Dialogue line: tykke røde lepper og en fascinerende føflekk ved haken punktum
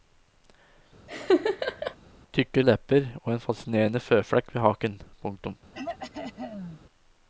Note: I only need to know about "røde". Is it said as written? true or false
false